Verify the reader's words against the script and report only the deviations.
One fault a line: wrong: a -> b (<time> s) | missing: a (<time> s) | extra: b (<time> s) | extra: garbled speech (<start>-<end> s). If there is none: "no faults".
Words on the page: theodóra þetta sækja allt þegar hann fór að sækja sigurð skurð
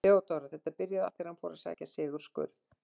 wrong: sækja -> byrjaði (0.8 s)